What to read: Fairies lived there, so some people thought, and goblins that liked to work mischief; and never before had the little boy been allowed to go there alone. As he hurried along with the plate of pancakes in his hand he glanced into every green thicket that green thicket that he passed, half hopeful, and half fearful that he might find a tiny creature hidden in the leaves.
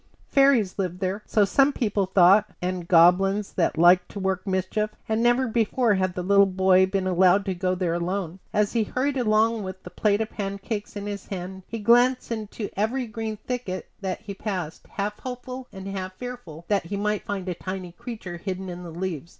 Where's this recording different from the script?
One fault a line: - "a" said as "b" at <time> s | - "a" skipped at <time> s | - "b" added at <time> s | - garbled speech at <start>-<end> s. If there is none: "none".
- "green thicket that" skipped at 14.2 s